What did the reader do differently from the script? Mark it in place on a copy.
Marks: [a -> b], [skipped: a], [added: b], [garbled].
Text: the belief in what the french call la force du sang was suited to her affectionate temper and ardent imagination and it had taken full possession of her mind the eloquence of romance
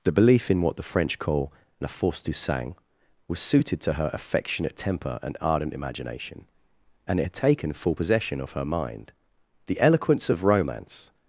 the belief in what the french call la force du sang was suited to her affectionate temper and ardent imagination and it had taken full possession of her mind the eloquence of romance